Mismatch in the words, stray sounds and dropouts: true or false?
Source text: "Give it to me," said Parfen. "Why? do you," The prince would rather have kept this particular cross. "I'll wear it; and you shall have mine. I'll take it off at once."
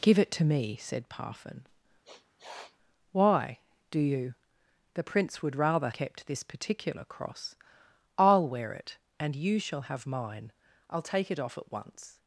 true